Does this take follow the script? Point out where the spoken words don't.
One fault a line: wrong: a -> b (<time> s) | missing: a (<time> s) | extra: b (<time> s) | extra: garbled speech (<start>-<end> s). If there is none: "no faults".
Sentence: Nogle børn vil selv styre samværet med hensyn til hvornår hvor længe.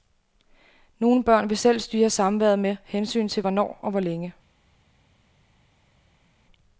extra: og (3.8 s)